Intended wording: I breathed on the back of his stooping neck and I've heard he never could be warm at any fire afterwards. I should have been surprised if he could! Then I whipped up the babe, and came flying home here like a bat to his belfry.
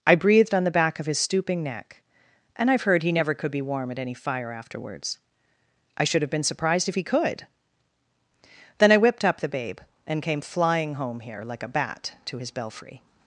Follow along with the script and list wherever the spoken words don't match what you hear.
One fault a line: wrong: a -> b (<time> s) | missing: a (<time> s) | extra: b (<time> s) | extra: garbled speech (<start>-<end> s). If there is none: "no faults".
no faults